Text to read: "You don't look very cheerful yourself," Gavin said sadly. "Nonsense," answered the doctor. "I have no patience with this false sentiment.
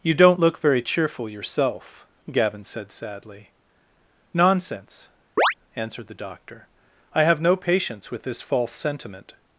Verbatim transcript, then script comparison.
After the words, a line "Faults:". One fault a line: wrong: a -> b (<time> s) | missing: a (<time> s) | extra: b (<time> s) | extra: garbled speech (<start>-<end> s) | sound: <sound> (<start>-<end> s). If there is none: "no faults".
"You don't look very cheerful yourself," Gavin said sadly. "Nonsense," answered the doctor. "I have no patience with this false sentiment.
Faults:
sound: chirp (5.4-5.5 s)